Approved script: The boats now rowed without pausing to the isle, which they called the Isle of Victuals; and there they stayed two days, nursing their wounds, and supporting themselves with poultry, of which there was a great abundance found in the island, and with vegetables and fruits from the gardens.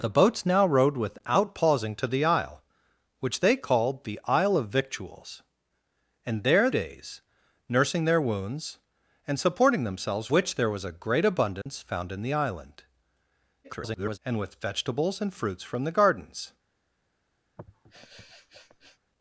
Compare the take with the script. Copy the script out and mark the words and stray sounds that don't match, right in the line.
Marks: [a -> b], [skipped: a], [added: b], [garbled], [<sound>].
The boats now rowed without pausing to the isle, which they called the Isle of Victuals; and there [skipped: they stayed two] days, nursing their wounds, and supporting themselves [skipped: with poultry, of] which there was a great abundance [dropout] found in the island, [garbled] and with vegetables and fruits from the gardens. [sniff]